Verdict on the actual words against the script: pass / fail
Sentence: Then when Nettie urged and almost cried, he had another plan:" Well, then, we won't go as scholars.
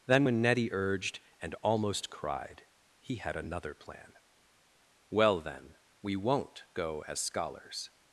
pass